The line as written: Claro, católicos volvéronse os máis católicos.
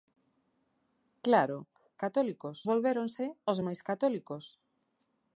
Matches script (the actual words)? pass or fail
pass